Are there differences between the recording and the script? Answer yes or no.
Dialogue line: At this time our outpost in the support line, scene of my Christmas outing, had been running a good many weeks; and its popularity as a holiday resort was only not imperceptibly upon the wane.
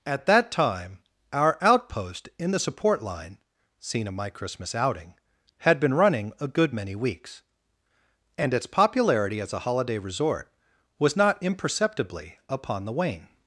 yes